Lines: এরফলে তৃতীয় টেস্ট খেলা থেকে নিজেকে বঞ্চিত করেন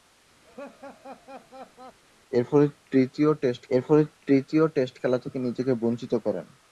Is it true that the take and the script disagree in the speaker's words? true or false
true